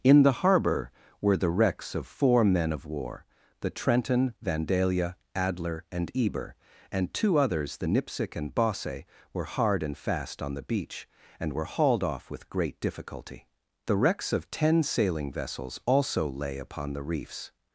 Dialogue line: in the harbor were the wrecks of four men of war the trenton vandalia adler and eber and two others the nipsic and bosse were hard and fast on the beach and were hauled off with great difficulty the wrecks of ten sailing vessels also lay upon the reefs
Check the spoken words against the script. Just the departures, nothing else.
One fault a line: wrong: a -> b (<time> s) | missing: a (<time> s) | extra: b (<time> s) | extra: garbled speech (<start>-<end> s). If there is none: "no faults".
no faults